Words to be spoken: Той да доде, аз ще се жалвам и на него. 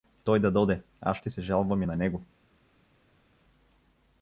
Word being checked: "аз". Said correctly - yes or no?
yes